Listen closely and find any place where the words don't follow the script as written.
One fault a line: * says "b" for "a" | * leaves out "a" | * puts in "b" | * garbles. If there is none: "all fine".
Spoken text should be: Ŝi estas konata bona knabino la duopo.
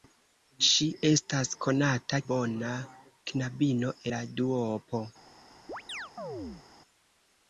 all fine